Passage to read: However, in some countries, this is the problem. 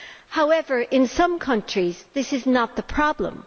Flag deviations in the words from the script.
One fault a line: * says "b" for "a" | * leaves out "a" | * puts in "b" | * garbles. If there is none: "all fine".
* puts in "not"